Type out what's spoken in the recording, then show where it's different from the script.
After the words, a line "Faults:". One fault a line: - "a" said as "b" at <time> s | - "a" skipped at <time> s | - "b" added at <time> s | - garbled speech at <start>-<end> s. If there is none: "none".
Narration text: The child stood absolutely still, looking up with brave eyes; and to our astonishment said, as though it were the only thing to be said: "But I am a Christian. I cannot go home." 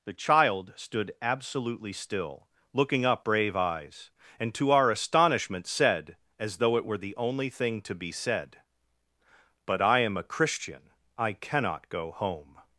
The child stood absolutely still, looking up brave eyes; and to our astonishment said, as though it were the only thing to be said: "But I am a Christian. I cannot go home."
Faults:
- "with" skipped at 3.2 s